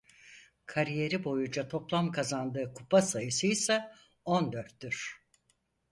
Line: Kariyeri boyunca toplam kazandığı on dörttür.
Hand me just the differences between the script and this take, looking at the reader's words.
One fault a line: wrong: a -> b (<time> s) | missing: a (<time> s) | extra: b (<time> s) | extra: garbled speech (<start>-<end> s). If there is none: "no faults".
extra: kupa sayısıysa (2.7 s)